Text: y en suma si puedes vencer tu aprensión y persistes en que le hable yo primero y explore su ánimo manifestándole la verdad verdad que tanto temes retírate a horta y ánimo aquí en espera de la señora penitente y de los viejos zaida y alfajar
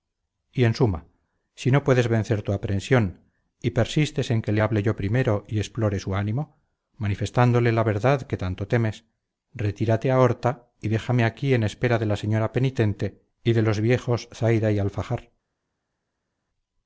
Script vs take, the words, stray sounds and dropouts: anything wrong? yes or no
yes